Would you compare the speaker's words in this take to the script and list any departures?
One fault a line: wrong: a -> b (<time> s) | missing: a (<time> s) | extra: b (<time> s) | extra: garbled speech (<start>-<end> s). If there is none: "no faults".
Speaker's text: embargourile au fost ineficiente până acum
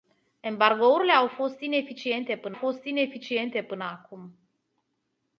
extra: fost ineficiente până (2.5 s)